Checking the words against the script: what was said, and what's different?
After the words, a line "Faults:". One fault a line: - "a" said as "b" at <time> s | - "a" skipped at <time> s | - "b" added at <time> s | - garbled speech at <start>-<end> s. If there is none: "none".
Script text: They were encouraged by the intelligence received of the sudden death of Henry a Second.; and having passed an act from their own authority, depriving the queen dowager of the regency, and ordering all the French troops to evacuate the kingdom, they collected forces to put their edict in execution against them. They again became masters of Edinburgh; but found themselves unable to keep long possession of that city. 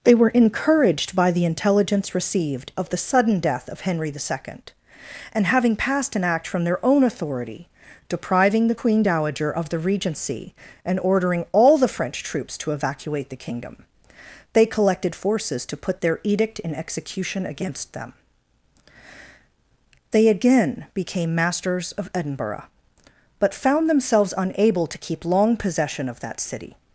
They were encouraged by the intelligence received of the sudden death of Henry the Second.; and having passed an act from their own authority, depriving the queen dowager of the regency, and ordering all the French troops to evacuate the kingdom, they collected forces to put their edict in execution against them. They again became masters of Edinburgh; but found themselves unable to keep long possession of that city.
Faults:
- "a" said as "the" at 4.1 s